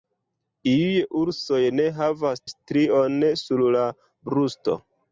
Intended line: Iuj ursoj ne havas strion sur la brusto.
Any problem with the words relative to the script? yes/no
no